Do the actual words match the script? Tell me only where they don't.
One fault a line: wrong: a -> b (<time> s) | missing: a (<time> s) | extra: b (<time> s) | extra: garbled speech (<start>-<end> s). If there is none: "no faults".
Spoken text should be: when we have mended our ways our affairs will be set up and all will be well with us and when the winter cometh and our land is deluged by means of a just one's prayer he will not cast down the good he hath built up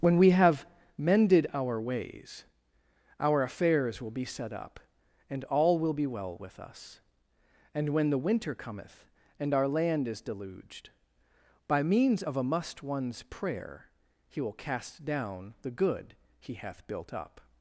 wrong: just -> must (12.4 s)
missing: not (14.5 s)